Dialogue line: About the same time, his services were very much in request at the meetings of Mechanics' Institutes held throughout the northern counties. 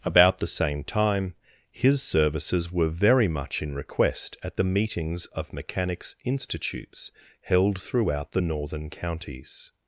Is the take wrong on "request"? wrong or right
right